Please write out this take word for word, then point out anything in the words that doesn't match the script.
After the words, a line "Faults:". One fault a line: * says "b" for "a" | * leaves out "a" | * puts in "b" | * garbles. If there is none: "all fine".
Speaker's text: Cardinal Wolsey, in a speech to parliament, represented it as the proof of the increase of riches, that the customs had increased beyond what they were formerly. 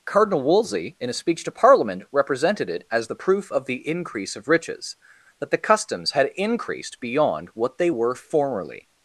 Cardinal Wolsey, in a speech to parliament, represented it as the proof of the increase of riches, that the customs had increased beyond what they were formerly.
Faults:
all fine